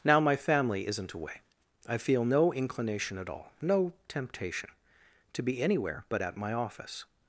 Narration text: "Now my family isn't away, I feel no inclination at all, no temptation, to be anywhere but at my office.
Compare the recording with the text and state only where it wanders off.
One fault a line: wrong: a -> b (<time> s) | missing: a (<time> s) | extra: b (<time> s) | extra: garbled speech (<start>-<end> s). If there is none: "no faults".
no faults